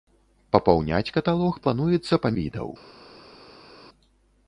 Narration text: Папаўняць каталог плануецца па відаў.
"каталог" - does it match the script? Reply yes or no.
yes